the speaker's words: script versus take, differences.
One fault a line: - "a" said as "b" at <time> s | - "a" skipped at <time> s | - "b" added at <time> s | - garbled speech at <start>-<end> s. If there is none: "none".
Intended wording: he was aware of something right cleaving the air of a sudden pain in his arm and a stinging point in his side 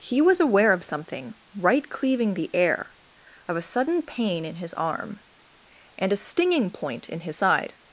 none